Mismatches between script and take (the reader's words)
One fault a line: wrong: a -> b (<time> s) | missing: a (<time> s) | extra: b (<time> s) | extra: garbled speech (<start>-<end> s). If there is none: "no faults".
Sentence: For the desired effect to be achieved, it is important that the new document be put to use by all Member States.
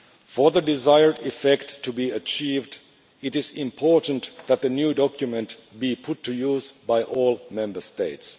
no faults